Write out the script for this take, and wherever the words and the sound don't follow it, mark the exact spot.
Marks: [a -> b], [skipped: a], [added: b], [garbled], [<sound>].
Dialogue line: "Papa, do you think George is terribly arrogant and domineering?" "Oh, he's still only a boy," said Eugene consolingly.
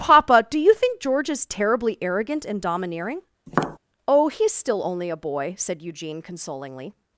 "Papa, do you think George is terribly arrogant and domineering?" [tap] "Oh, he's still only a boy," said Eugene consolingly.